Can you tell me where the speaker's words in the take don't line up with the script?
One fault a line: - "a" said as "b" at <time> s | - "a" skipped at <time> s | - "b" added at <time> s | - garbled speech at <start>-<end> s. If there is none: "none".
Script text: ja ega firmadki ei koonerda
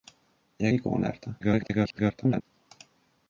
- "ega firmadki" skipped at 0.7 s
- garbled speech at 1.4-2.4 s